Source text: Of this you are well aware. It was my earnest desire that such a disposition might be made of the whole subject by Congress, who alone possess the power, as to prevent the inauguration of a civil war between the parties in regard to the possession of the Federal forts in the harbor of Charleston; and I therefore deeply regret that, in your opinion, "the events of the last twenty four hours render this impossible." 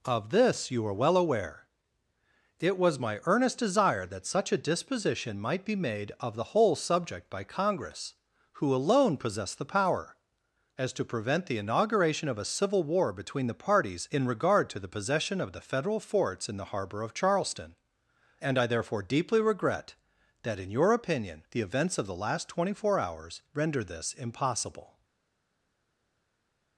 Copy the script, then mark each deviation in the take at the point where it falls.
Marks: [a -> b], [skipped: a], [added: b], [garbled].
Of this you are well aware. It was my earnest desire that such a disposition might be made of the whole subject by Congress, who alone possess the power, as to prevent the inauguration of a civil war between the parties in regard to the possession of the Federal forts in the harbor of Charleston; and I therefore deeply regret that, in your opinion, "the events of the last twenty four hours render this impossible."